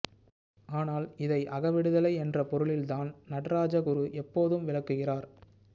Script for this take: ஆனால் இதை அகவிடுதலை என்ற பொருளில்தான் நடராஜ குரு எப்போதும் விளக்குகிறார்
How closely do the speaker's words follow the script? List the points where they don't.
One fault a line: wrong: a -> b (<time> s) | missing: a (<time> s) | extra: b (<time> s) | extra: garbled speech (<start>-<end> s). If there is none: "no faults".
no faults